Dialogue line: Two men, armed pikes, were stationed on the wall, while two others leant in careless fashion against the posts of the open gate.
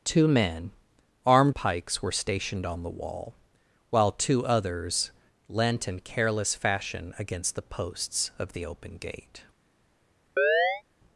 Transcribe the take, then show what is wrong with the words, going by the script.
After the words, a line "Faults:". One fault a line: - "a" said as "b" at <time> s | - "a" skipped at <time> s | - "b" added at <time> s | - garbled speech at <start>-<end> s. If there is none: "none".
Two men, armed pikes, were stationed on the wall, while two others leant in careless fashion against the posts of the open gate.
Faults:
none